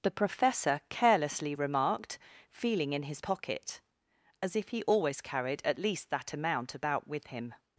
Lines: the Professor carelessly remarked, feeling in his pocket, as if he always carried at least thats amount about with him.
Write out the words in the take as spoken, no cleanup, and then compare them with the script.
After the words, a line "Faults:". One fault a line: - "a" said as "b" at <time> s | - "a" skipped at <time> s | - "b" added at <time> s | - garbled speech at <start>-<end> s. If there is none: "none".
the Professor carelessly remarked, feeling in his pocket, as if he always carried at least that amount about with him.
Faults:
- "thats" said as "that" at 6.1 s